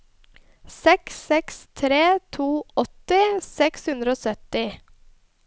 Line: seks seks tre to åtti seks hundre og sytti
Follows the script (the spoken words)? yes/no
yes